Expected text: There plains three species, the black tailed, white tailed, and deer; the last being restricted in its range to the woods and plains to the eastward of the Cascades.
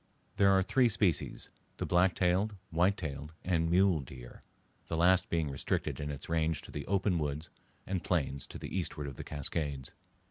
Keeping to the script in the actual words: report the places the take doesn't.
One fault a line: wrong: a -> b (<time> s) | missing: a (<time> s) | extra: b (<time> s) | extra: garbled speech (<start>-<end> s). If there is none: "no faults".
wrong: plains -> are (0.5 s)
extra: mule (3.7 s)
extra: open (6.9 s)